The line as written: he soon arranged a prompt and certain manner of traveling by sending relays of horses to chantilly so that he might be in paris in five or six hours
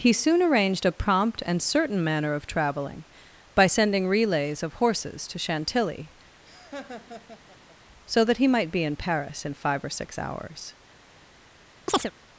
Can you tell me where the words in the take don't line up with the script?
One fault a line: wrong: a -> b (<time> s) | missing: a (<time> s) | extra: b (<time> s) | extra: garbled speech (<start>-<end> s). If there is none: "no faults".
no faults